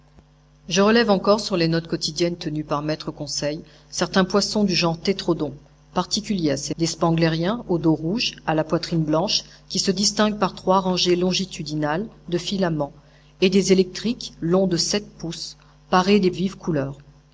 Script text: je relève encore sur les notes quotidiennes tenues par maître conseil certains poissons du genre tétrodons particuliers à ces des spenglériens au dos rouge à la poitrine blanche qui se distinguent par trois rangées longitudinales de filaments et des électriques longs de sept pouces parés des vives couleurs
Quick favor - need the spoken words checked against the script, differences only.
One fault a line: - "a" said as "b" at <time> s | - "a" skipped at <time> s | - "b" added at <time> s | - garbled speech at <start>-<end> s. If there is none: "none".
none